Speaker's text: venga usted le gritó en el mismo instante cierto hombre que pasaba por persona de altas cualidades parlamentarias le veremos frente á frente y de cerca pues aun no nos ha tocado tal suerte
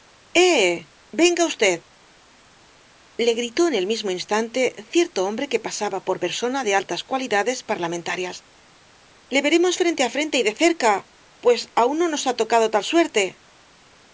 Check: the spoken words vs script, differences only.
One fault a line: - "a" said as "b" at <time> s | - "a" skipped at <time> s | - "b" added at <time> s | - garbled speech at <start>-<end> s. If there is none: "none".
none